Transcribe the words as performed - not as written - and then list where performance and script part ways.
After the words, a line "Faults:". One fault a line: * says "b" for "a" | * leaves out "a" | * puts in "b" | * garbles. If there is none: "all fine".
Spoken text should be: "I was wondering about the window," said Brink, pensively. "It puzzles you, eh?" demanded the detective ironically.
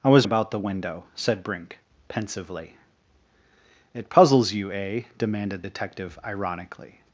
"I was about the window," said Brink, pensively. "It puzzles you, eh?" demanded detective ironically.
Faults:
* leaves out "wondering"
* leaves out "the"